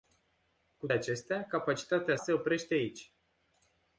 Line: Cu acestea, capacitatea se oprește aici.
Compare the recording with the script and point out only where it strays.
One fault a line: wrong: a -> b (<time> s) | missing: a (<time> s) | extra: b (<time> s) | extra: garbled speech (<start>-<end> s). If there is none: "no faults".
no faults